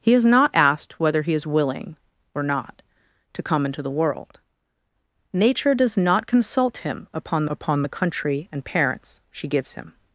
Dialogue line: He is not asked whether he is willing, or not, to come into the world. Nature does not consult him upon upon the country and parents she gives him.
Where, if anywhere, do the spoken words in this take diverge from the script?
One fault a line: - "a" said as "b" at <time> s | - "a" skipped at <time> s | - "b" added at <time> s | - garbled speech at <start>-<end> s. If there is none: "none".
none